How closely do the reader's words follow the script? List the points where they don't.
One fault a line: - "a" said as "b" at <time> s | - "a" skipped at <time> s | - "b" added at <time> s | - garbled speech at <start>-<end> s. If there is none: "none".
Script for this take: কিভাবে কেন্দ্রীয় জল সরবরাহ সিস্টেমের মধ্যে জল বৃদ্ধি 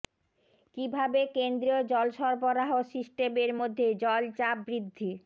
- "চাপ" added at 4.4 s